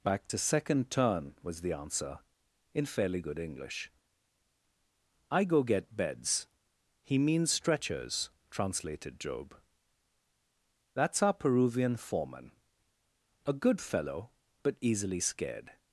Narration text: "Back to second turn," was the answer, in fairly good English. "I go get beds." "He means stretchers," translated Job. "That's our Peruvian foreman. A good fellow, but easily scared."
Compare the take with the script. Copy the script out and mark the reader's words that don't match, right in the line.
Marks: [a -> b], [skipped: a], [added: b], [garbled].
"Back to second turn," was the answer, in fairly good English. "I go get beds." "He means stretchers," translated Job. "That's our Peruvian foreman. A good fellow, but easily scared."